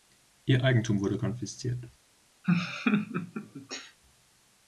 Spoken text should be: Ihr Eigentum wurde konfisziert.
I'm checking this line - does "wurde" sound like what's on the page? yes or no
yes